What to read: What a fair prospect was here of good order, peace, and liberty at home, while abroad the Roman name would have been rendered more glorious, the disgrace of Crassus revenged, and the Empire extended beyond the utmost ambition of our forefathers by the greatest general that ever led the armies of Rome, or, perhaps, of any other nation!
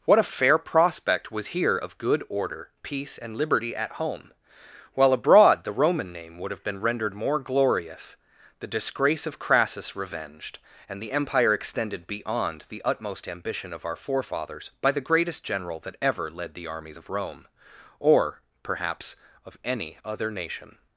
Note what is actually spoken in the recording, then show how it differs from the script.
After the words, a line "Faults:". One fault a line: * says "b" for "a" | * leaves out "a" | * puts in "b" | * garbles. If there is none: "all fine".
What a fair prospect was here of good order, peace, and liberty at home, while abroad the Roman name would have been rendered more glorious, the disgrace of Crassus revenged, and the Empire extended beyond the utmost ambition of our forefathers by the greatest general that ever led the armies of Rome, or, perhaps, of any other nation!
Faults:
all fine